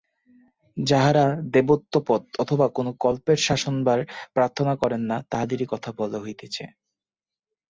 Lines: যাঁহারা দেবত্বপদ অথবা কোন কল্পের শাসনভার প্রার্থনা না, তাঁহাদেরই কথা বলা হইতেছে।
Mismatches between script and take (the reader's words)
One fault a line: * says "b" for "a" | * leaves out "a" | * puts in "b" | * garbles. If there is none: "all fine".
* puts in "করেন"